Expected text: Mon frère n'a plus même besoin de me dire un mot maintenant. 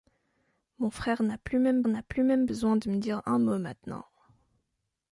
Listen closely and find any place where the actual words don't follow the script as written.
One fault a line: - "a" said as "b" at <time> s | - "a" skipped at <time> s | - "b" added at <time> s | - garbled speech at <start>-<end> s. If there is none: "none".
- "n'a plus même" added at 1.9 s